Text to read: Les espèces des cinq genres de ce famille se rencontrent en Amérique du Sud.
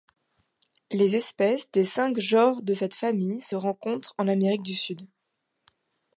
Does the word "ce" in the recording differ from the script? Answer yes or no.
yes